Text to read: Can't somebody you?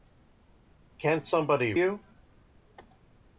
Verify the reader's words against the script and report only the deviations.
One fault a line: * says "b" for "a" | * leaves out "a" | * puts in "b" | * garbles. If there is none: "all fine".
all fine